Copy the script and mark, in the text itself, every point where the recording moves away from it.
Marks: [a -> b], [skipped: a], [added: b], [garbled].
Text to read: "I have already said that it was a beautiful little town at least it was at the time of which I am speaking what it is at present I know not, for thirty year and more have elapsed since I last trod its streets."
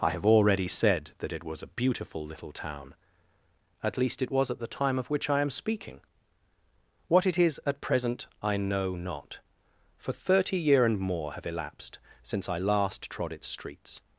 "I have already said that it was a beautiful little town at least it was at the time of which I am speaking what it is at present I know not, for thirty year and more have elapsed since I last trod its streets."